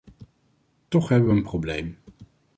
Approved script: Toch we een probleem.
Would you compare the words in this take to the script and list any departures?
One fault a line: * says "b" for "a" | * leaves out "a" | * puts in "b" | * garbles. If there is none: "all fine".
* puts in "hebben"